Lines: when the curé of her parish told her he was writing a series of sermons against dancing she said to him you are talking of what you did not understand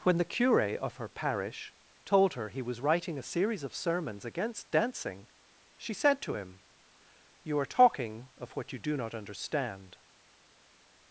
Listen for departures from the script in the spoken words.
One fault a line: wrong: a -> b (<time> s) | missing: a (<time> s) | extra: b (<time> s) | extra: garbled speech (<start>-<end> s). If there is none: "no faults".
wrong: did -> do (8.8 s)